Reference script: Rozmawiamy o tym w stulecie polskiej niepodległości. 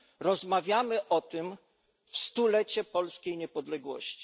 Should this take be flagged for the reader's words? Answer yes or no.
no